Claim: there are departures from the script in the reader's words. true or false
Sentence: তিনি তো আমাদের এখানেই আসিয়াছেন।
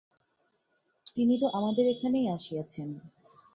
false